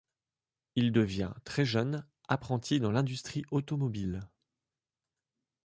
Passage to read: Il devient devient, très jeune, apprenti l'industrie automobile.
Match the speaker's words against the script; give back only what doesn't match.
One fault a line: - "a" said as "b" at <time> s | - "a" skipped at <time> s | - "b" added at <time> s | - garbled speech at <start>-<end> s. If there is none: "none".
- "devient" skipped at 1.3 s
- "dans" added at 2.8 s